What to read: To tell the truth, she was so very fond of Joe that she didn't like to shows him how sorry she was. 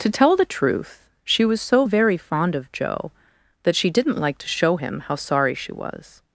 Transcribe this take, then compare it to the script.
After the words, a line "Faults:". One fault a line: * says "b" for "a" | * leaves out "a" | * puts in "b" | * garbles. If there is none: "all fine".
To tell the truth, she was so very fond of Joe that she didn't like to show him how sorry she was.
Faults:
* says "show" for "shows"